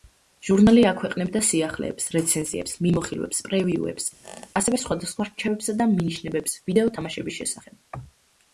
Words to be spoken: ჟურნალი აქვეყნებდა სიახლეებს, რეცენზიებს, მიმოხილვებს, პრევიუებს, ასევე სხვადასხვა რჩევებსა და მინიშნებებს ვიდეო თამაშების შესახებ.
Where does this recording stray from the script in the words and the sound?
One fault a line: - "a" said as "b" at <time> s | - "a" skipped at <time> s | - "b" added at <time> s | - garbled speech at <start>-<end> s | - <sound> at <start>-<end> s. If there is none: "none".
- squeak at 4.2-4.5 s